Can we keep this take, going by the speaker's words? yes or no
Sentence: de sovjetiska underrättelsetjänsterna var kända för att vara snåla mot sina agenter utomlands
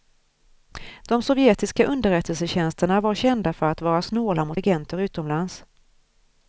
no